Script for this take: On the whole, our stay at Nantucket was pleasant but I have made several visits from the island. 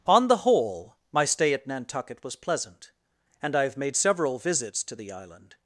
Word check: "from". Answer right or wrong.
wrong